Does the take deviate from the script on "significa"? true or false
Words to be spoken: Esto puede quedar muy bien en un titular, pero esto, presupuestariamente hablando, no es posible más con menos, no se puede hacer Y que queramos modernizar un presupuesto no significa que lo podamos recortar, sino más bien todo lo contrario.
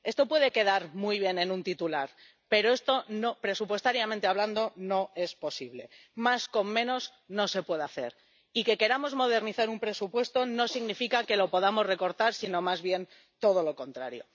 false